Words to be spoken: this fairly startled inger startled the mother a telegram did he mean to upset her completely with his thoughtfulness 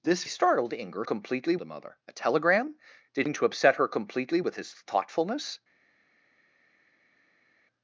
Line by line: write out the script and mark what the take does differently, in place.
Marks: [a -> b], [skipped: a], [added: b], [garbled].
this [skipped: fairly] startled inger [startled -> completely] the mother a telegram did [skipped: he] mean to upset her completely with his thoughtfulness